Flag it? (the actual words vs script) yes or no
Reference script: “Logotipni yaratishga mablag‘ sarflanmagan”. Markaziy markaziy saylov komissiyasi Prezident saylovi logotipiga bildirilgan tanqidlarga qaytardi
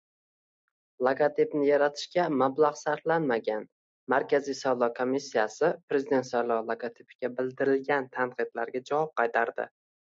yes